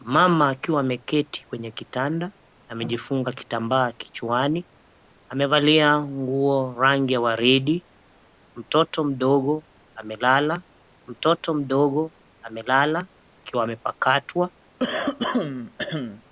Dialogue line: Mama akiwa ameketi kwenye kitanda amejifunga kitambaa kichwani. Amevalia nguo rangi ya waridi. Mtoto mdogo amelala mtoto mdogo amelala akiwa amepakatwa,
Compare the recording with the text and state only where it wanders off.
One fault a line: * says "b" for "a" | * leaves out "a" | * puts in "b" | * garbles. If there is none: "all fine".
all fine